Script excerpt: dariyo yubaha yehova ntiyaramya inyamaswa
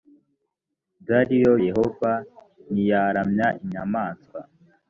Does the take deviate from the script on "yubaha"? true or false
true